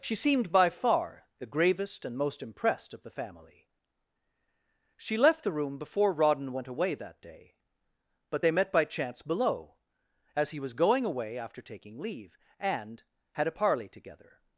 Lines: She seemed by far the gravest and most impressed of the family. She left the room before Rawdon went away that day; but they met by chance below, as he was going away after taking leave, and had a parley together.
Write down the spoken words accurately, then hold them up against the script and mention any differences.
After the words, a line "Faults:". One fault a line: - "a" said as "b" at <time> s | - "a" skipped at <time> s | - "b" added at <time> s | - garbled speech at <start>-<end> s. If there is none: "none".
She seemed by far the gravest and most impressed of the family. She left the room before Rawdon went away that day; but they met by chance below, as he was going away after taking leave, and had a parley together.
Faults:
none